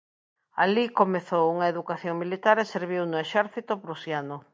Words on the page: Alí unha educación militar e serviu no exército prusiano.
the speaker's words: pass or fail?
fail